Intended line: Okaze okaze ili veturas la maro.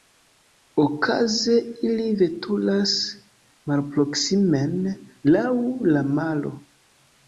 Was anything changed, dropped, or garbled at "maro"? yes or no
no